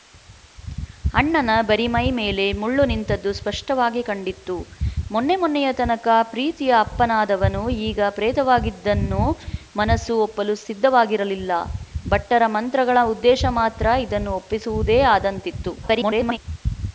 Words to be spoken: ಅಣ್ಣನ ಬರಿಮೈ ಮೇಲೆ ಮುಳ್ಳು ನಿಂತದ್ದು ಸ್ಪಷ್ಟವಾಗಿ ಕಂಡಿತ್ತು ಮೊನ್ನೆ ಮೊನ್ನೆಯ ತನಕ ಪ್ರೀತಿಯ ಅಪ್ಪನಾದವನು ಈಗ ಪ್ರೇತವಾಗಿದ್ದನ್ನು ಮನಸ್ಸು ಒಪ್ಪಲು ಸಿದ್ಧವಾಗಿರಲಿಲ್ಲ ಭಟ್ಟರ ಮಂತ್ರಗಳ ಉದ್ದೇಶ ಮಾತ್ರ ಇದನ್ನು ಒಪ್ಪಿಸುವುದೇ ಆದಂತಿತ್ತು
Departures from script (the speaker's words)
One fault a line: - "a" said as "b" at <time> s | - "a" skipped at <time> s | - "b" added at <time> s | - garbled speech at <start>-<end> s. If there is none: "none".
- garbled speech at 15.8-16.4 s